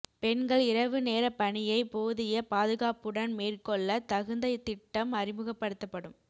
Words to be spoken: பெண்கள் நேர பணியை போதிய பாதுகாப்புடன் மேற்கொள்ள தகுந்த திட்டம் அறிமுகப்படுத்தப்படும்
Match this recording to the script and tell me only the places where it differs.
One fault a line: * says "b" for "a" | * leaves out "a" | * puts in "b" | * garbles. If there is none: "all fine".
* puts in "இரவு"